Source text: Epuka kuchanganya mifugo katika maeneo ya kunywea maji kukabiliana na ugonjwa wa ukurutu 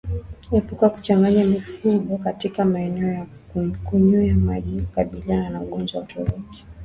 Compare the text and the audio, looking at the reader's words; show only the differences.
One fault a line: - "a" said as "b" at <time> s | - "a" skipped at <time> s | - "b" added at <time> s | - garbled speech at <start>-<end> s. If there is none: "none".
none